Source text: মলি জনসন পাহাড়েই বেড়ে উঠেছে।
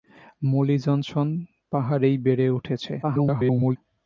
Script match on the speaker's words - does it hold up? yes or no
no